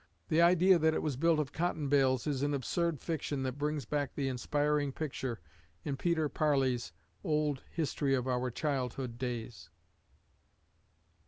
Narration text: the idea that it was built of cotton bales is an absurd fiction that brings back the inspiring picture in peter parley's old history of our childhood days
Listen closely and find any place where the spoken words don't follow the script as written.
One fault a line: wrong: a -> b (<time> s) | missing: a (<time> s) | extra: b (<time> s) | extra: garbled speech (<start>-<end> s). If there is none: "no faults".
no faults